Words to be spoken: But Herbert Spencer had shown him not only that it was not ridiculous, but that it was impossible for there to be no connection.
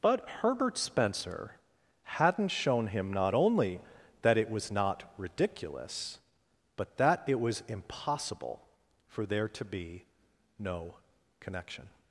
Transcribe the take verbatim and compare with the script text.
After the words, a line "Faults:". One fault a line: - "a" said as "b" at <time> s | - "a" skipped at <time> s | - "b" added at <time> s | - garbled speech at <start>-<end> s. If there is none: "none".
But Herbert Spencer hadn't shown him not only that it was not ridiculous, but that it was impossible for there to be no connection.
Faults:
- "had" said as "hadn't" at 2.0 s